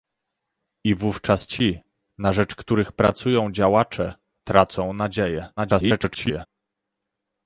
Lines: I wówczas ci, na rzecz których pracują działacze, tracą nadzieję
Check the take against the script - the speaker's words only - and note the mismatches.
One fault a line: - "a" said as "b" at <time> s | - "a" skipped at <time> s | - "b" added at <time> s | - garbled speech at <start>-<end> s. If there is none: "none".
- garbled speech at 5.6-6.5 s